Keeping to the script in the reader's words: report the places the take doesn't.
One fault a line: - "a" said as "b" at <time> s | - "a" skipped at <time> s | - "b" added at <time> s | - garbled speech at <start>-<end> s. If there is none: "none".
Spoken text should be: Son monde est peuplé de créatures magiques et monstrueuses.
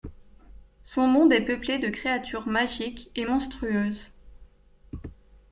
none